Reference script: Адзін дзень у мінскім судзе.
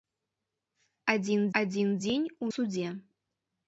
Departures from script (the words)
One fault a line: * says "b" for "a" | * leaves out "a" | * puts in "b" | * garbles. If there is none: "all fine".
* puts in "адзін"
* leaves out "мінскім"